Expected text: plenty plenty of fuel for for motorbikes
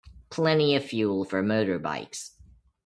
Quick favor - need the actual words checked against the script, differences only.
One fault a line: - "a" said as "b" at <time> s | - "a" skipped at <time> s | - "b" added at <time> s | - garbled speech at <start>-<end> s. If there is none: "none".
- "plenty" skipped at 0.8 s
- "for" skipped at 1.4 s